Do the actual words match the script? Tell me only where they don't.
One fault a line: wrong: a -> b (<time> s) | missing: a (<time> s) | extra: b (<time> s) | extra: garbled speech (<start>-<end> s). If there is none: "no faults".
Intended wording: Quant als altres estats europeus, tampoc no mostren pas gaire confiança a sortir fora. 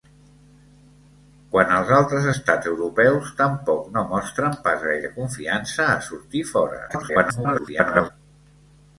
extra: garbled speech (6.9-8.1 s)